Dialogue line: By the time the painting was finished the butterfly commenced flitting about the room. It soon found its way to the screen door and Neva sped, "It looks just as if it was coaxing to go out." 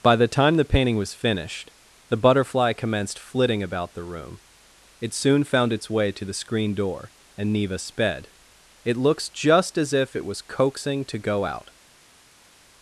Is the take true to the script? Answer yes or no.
yes